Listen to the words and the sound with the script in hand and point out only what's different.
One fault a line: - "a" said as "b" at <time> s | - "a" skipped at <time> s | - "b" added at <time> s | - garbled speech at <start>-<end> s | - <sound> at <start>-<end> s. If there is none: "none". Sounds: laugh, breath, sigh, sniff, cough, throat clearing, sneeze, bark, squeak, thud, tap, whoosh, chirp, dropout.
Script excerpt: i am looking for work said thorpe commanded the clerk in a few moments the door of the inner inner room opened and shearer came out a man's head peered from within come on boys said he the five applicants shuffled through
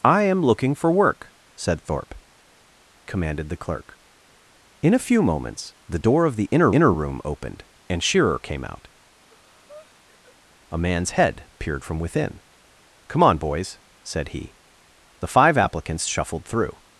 - breath at 9.2-10.4 s